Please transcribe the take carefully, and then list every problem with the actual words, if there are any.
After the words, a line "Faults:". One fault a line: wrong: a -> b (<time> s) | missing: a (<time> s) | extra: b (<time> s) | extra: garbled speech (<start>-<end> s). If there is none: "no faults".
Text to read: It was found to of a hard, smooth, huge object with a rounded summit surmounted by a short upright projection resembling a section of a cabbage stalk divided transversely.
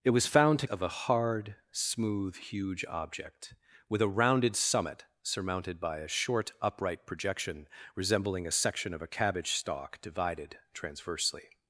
It was found to of a hard, smooth, huge object with a rounded summit surmounted by a short upright projection resembling a section of a cabbage stalk divided transversely.
Faults:
no faults